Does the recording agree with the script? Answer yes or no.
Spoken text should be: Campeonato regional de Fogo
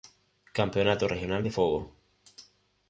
yes